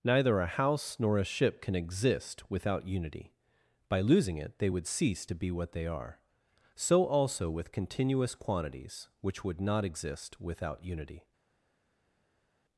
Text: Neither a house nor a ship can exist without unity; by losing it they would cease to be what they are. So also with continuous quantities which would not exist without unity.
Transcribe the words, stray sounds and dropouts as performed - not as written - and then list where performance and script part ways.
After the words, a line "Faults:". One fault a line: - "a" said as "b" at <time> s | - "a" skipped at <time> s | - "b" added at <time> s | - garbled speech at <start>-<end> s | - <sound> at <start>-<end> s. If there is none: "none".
Neither a house nor a ship can exist without unity; by losing it they would cease to be what they are. So also with continuous quantities which would not exist without unity.
Faults:
none